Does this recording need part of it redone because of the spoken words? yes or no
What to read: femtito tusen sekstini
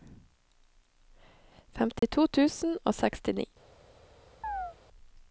yes